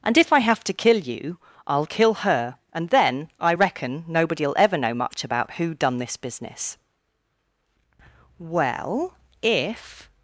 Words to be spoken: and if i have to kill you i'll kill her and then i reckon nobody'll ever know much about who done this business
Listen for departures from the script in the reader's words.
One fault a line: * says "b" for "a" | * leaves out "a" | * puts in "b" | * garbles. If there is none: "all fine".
* puts in "well if"